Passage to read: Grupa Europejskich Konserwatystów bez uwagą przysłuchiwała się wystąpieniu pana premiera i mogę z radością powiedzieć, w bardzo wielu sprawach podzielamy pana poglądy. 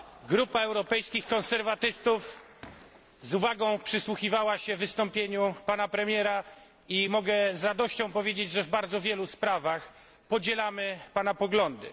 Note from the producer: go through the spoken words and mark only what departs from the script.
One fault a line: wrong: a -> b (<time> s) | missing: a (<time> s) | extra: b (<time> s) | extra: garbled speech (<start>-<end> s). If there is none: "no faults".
wrong: bez -> z (3.2 s)
extra: że (8.5 s)